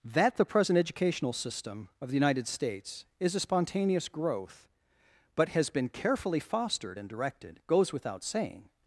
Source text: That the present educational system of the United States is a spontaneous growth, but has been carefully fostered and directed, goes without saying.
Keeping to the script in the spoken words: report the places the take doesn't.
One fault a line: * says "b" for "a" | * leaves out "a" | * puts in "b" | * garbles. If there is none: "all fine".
all fine